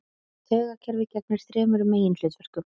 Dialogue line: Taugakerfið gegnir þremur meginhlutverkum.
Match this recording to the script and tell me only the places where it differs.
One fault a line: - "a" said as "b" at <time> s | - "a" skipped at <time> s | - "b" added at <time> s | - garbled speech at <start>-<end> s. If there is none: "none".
none